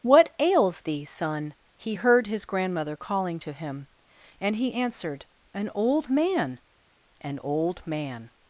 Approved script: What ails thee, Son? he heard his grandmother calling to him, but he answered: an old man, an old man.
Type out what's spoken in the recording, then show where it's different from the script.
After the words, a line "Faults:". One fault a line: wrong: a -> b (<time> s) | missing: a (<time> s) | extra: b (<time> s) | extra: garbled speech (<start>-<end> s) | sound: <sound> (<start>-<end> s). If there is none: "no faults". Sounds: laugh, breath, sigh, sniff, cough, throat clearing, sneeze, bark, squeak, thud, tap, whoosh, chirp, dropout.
What ails thee, Son? he heard his grandmother calling to him, and he answered: an old man, an old man.
Faults:
wrong: but -> and (4.4 s)